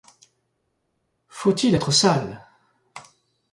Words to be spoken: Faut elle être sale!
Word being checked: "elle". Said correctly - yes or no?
no